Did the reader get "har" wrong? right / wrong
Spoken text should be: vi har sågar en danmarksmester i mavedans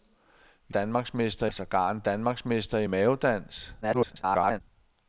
wrong